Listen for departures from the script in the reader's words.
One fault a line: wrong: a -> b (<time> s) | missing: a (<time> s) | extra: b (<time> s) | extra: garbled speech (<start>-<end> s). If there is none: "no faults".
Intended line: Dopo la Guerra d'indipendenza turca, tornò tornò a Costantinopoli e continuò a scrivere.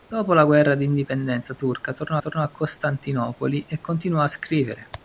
no faults